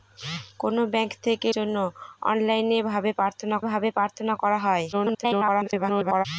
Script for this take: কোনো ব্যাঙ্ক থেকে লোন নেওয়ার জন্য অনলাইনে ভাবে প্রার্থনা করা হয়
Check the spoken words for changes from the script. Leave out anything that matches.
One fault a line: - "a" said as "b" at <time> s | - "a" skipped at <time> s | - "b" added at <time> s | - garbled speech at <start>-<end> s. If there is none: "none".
- "লোন নেওয়ার জন্য অনলাইনে" said as "জন্য অনলাইনে ভাবে প্রার্থনা" at 1.6 s
- garbled speech at 4.9-6.3 s